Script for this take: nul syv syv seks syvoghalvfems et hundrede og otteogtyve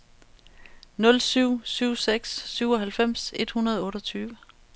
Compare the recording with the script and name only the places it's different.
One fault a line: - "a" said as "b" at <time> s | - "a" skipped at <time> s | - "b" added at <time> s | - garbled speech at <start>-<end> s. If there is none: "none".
none